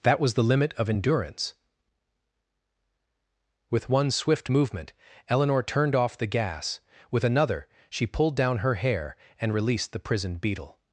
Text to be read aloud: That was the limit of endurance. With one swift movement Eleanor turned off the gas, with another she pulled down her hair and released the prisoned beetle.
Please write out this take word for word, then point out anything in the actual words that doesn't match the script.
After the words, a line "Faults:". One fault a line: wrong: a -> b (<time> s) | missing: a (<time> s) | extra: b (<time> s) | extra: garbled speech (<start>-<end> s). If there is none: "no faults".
That was the limit of endurance. With one swift movement Eleanor turned off the gas, with another she pulled down her hair and released the prisoned beetle.
Faults:
no faults